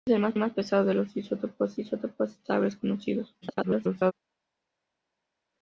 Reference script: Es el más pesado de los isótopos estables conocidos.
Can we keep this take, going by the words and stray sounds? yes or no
no